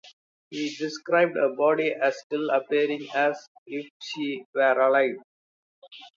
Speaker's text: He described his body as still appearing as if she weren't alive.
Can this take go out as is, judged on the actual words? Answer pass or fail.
fail